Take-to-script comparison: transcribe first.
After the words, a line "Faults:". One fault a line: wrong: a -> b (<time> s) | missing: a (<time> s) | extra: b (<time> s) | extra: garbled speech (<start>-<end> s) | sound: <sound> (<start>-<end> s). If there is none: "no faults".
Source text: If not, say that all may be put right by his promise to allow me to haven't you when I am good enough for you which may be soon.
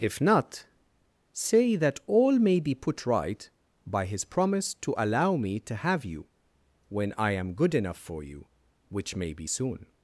If not, say that all may be put right by his promise to allow me to have you when I am good enough for you which may be soon.
Faults:
wrong: haven't -> have (5.8 s)